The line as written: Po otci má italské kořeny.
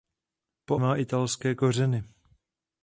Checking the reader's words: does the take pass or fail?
fail